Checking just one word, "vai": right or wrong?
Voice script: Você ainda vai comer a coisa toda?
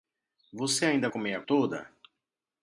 wrong